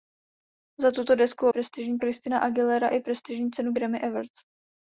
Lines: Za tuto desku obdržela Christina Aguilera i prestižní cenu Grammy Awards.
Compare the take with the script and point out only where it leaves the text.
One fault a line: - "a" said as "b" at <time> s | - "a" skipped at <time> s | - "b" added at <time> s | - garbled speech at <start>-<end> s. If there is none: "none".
- "obdržela" said as "prestižní" at 1.5 s